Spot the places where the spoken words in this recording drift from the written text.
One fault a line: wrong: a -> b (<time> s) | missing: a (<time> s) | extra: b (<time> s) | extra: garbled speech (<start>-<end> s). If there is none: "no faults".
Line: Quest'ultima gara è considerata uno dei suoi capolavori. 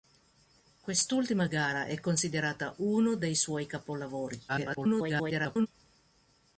extra: garbled speech (4.5-5.7 s)